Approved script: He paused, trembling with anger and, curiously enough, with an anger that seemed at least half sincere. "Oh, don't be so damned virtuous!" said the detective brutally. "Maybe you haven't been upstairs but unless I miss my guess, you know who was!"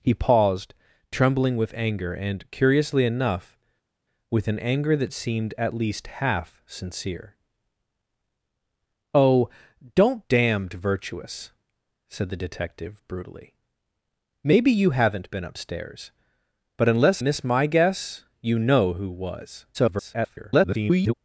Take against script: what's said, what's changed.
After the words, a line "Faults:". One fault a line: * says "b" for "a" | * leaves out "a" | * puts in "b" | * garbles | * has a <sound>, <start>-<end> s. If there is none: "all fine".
He paused, trembling with anger and, curiously enough, with an anger that seemed at least half sincere. "Oh, don't damned virtuous!" said the detective brutally. "Maybe you haven't been upstairs but unless miss my guess, you know who was!" [garbled]
Faults:
* leaves out "be so"
* leaves out "I"
* garbles